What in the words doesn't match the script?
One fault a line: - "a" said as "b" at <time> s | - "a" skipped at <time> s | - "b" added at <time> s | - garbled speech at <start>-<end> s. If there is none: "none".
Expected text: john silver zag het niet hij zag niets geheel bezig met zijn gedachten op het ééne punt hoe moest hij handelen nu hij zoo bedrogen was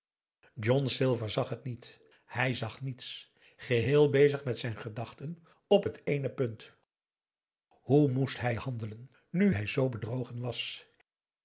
none